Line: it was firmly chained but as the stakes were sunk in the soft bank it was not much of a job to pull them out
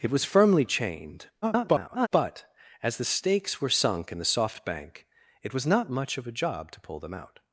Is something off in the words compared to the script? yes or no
yes